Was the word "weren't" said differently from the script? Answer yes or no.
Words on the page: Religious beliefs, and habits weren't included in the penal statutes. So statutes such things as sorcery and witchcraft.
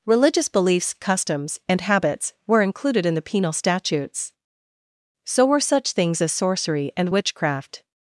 yes